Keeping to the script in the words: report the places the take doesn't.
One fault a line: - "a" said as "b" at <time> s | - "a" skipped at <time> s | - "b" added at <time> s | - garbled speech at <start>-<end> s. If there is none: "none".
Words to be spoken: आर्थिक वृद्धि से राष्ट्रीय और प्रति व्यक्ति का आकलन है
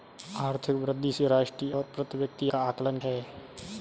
none